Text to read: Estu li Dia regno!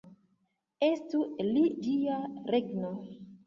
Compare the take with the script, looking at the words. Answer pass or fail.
pass